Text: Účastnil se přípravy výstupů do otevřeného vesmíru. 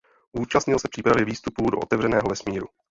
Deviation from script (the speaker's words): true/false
false